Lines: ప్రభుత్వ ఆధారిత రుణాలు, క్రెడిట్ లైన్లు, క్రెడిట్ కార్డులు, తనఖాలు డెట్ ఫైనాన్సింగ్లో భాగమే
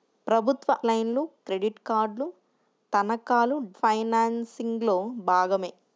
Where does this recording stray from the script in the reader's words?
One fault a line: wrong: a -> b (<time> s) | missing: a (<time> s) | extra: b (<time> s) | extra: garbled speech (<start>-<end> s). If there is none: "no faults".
missing: ఆధారిత రుణాలు క్రెడిట్ (0.7 s)
missing: డెట్ (3.6 s)